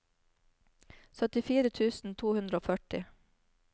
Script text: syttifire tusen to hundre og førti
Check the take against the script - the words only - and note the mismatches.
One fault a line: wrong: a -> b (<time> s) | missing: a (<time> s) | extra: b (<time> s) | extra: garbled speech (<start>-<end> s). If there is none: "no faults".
no faults